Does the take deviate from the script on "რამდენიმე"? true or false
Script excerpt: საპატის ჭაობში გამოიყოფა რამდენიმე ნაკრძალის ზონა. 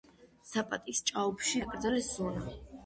true